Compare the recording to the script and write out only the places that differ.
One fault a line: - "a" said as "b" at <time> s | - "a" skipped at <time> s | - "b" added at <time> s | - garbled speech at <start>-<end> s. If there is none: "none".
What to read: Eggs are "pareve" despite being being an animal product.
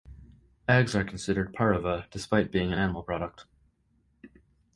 - "considered" added at 1.0 s
- "being" skipped at 2.7 s